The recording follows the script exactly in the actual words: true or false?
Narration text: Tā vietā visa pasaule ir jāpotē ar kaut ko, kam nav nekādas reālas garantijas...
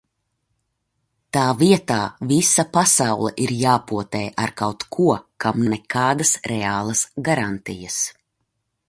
false